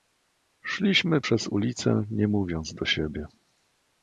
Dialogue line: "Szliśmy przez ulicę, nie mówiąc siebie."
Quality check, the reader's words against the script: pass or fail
fail